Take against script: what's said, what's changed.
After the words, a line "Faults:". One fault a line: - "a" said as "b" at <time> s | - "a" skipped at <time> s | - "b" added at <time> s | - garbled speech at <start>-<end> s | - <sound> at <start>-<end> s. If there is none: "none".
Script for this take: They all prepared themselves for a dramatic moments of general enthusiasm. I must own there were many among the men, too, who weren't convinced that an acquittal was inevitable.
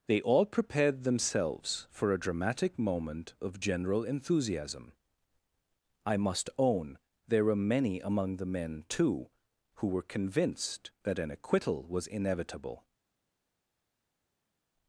They all prepared themselves for a dramatic moment of general enthusiasm. I must own there were many among the men, too, who were convinced that an acquittal was inevitable.
Faults:
- "moments" said as "moment" at 2.8 s
- "weren't" said as "were" at 9.9 s